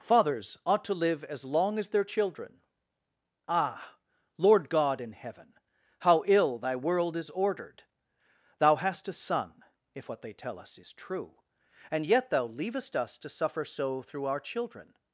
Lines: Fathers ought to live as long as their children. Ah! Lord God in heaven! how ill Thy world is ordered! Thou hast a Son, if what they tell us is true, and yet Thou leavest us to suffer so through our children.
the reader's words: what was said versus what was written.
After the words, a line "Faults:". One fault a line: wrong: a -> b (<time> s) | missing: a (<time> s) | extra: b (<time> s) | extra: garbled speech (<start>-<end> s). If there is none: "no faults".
Fathers ought to live as long as their children. Ah! Lord God in heaven! how ill Thy world is ordered! Thou hast a Son, if what they tell us is true, and yet Thou leavest us to suffer so through our children.
Faults:
no faults